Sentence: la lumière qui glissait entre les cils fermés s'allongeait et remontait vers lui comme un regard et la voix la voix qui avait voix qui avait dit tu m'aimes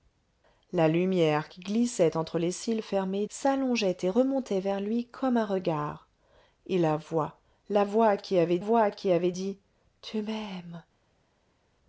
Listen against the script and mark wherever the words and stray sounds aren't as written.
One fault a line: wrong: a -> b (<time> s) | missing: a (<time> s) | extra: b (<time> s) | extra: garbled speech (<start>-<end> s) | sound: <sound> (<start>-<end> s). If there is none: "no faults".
no faults